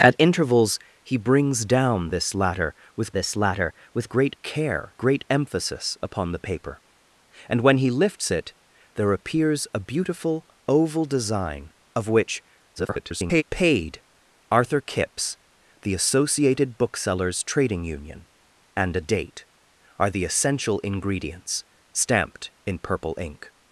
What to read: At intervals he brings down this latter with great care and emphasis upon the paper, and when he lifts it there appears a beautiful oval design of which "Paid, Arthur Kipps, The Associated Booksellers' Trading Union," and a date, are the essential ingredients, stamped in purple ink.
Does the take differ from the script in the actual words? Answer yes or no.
yes